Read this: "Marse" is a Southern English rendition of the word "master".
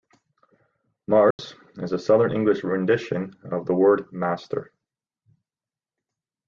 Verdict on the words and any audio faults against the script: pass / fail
fail